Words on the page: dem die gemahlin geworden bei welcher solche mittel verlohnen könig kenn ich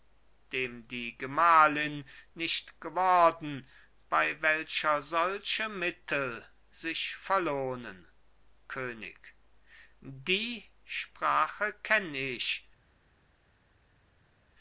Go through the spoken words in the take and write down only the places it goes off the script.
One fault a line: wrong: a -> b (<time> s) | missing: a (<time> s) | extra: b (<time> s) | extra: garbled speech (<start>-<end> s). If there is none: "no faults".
extra: nicht (2.3 s)
extra: sich (6.7 s)
extra: die sprache (10.0 s)